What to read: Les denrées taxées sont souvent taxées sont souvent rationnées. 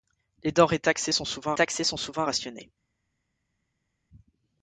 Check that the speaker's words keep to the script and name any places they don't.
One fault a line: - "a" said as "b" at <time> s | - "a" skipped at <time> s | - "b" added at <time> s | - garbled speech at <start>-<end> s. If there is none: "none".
none